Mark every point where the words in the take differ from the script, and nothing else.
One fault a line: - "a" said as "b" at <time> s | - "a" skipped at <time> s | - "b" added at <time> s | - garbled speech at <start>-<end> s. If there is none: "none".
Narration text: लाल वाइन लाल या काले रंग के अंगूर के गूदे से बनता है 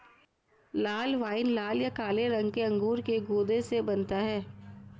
none